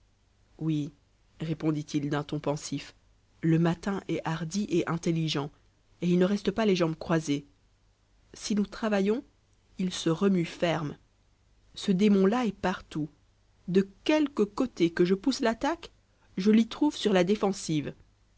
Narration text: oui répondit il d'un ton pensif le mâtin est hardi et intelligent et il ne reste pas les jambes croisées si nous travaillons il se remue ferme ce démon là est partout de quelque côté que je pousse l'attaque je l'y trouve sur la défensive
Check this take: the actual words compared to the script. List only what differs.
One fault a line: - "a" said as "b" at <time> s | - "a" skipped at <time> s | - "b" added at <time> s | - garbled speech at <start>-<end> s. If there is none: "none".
none